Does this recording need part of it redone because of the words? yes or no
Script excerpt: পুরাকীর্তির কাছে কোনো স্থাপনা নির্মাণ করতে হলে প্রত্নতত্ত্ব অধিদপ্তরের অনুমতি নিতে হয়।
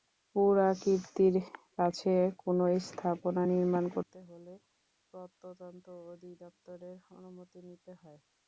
no